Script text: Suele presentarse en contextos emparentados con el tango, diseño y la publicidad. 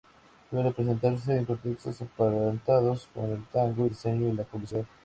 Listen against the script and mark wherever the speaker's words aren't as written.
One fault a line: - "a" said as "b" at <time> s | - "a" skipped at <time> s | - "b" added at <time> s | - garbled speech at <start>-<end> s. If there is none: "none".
none